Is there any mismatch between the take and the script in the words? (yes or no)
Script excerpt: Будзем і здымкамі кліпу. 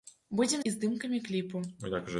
no